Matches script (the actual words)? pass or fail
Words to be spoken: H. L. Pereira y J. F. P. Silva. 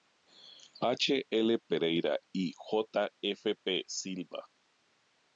pass